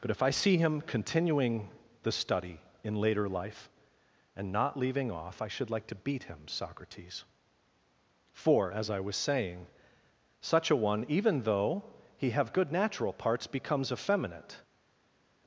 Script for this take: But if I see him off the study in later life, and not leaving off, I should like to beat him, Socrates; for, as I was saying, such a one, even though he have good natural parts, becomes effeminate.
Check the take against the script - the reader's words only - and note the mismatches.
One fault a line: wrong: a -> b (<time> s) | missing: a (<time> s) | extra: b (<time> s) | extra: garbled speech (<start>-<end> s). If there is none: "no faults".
wrong: off -> continuing (0.8 s)